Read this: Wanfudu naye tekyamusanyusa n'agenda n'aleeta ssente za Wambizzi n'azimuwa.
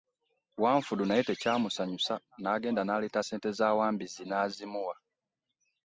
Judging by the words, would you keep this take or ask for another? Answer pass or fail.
pass